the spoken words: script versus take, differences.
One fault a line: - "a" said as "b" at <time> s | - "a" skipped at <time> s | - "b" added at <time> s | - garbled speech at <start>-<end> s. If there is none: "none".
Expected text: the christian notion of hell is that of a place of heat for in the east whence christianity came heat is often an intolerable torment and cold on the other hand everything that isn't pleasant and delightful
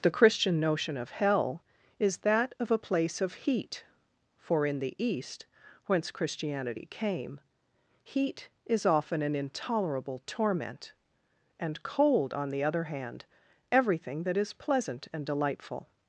- "isn't" said as "is" at 14.4 s